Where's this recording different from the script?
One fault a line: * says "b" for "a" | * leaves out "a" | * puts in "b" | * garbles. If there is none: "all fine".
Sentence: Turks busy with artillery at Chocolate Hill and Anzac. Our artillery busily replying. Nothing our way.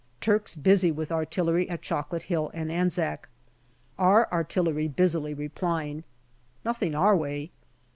all fine